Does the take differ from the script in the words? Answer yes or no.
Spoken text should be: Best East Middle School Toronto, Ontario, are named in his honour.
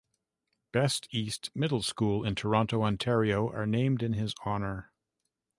yes